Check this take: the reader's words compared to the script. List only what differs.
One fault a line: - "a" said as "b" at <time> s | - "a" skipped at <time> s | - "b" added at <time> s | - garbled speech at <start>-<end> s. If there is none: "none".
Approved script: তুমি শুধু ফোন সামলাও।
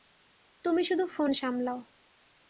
none